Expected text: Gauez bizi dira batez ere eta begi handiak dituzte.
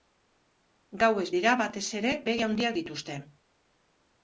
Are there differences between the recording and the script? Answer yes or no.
yes